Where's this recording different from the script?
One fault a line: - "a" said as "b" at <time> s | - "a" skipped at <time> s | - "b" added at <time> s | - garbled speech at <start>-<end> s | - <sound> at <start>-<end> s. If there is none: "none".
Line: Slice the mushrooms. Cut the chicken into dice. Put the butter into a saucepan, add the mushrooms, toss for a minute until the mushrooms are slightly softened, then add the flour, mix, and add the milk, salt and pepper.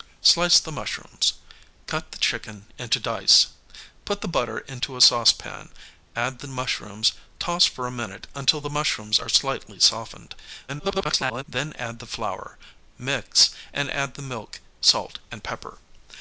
- garbled speech at 10.7-11.4 s